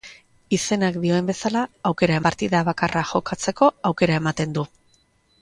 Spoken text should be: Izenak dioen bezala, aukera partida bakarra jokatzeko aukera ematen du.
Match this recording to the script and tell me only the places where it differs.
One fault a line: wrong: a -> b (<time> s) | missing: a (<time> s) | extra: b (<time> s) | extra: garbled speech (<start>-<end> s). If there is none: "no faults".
no faults